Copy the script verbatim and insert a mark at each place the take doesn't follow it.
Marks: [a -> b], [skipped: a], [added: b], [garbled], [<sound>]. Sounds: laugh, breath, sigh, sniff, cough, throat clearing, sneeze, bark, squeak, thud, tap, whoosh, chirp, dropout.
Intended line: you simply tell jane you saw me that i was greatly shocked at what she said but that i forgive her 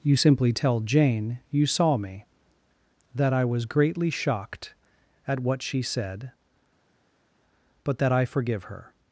you simply tell jane you saw me that i was greatly shocked at what she said but that i forgive her